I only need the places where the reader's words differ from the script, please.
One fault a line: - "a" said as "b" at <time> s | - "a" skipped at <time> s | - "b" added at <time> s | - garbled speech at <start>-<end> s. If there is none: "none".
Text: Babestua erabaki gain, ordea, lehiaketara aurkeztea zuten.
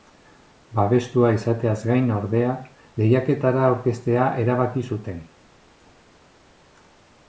- "erabaki" said as "izateaz" at 1.4 s
- "erabaki" added at 4.5 s